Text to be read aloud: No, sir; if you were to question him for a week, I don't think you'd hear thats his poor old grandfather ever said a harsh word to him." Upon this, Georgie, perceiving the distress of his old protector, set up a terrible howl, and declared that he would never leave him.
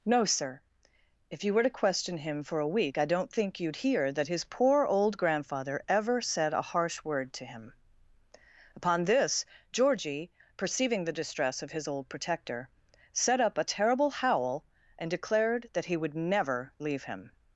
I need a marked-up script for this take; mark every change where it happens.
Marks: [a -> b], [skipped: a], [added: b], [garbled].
No, sir; if you were to question him for a week, I don't think you'd hear [thats -> that] his poor old grandfather ever said a harsh word to him." Upon this, Georgie, perceiving the distress of his old protector, set up a terrible howl, and declared that he would never leave him.